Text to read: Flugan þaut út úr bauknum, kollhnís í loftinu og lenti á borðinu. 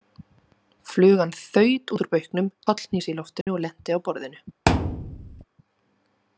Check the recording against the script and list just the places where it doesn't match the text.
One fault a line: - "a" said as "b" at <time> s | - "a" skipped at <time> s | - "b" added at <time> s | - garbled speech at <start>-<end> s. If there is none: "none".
none